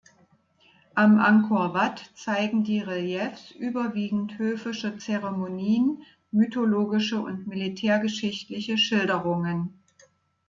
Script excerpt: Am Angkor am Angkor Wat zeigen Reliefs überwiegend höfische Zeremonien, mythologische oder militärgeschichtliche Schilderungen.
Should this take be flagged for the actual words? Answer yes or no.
yes